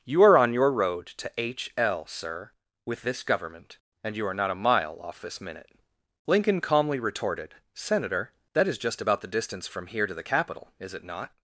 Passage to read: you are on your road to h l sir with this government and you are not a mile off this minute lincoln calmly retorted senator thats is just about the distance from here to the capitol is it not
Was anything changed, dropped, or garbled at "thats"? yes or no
yes